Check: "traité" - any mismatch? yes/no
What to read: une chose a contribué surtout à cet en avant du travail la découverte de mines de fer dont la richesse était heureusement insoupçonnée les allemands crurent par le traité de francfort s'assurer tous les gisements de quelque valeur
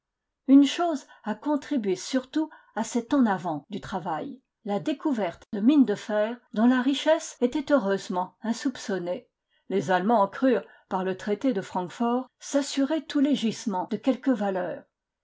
no